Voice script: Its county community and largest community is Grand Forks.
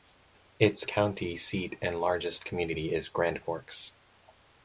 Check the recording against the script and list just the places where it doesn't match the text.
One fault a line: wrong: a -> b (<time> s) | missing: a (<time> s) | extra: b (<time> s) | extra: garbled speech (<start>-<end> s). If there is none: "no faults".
wrong: community -> seat (1.4 s)